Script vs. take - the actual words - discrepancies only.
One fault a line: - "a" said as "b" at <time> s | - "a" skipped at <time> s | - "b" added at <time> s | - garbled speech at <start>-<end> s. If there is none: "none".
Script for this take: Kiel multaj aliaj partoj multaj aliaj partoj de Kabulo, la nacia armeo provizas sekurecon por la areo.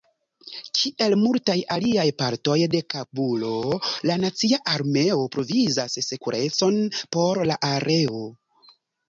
- "multaj aliaj partoj" skipped at 2.5 s